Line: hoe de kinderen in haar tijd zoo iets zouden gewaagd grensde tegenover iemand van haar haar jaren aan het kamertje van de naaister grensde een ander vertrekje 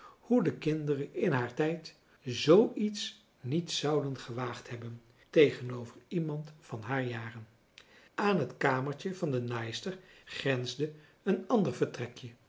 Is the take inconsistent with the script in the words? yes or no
yes